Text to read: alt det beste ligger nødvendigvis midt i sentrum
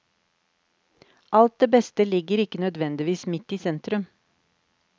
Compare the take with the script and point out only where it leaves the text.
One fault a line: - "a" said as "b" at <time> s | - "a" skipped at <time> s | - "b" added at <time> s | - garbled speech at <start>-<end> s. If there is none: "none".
- "ikke" added at 2.5 s